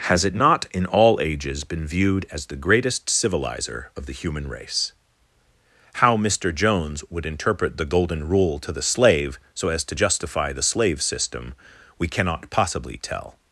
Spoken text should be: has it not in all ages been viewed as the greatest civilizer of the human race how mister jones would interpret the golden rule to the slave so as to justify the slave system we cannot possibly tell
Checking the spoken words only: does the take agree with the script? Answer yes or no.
yes